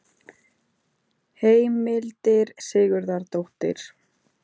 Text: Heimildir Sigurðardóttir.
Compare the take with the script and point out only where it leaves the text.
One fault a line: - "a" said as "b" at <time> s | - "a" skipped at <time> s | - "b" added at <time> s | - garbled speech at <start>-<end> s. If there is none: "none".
none